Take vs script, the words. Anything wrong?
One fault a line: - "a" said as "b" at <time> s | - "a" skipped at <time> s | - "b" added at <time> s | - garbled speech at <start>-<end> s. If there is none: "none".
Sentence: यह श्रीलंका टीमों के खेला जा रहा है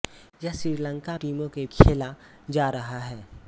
none